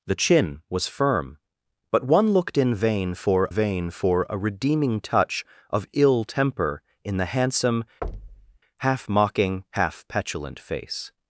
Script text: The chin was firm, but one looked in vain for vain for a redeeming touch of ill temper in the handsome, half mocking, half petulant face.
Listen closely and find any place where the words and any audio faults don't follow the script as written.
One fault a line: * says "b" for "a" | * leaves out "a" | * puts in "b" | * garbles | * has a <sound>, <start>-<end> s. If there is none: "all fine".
* has a thud, 8.0-8.6 s